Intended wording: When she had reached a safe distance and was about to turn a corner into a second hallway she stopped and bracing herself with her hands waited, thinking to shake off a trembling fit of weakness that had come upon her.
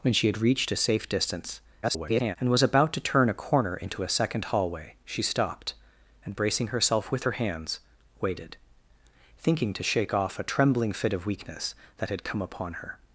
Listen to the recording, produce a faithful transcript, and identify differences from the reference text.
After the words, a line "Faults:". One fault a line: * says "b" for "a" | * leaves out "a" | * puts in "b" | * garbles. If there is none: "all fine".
When she had reached a safe distance [garbled] and was about to turn a corner into a second hallway she stopped and bracing herself with her hands waited, thinking to shake off a trembling fit of weakness that had come upon her.
Faults:
* garbles